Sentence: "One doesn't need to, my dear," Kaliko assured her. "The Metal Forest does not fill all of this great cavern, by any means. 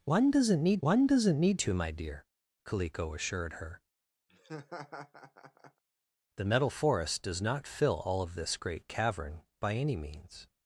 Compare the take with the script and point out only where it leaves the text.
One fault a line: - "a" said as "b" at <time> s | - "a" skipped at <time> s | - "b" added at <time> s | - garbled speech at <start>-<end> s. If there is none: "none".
- "one doesn't need" added at 0.8 s